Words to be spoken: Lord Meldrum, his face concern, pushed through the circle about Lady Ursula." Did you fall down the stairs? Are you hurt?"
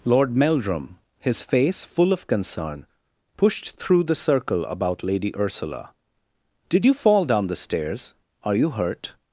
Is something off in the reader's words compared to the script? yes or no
yes